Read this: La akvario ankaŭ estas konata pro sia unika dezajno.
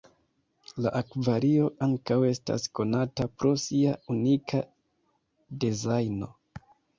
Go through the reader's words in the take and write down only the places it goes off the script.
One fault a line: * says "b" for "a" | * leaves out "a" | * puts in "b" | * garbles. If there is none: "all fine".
all fine